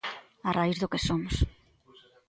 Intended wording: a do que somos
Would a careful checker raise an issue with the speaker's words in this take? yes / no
yes